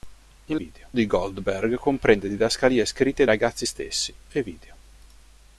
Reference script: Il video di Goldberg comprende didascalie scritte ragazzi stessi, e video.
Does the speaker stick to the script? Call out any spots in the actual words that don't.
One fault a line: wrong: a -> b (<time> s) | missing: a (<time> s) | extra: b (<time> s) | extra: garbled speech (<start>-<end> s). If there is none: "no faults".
no faults